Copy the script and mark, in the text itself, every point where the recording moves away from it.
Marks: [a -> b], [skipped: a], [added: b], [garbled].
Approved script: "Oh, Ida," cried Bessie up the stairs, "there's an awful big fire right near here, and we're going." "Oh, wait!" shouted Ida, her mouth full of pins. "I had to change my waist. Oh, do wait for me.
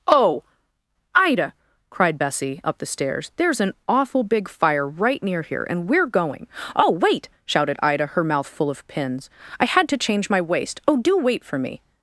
"Oh, Ida," cried Bessie up the stairs, "there's an awful big fire right near here, and we're going." "Oh, wait!" shouted Ida, her mouth full of pins. "I had to change my waist. Oh, do wait for me.